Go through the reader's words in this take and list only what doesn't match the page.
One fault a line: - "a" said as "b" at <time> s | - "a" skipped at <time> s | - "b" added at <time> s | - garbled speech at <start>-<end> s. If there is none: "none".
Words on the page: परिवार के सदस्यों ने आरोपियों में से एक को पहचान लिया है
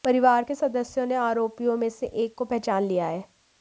none